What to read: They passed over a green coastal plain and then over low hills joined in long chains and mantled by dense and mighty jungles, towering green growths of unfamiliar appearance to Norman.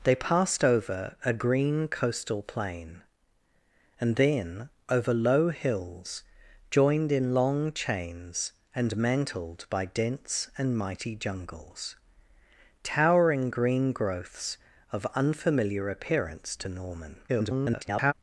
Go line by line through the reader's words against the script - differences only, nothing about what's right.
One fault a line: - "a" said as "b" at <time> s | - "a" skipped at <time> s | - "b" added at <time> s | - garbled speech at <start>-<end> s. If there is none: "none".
- garbled speech at 17.3-18.1 s